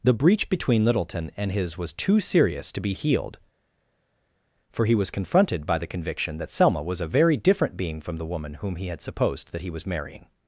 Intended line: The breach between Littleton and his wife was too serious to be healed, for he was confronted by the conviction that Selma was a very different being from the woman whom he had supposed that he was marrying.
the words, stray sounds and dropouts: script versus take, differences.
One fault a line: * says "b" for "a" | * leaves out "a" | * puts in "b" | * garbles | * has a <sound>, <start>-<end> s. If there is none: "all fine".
* leaves out "wife"